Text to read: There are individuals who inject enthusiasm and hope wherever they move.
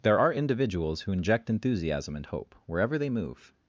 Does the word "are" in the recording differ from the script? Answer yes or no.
no